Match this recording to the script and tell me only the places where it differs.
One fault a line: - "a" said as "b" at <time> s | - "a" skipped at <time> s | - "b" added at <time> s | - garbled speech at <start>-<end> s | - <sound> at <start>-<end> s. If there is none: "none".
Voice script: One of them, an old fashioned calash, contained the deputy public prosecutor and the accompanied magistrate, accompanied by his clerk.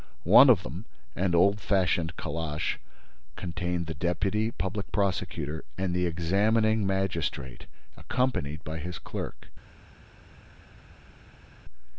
- "accompanied" said as "examining" at 6.1 s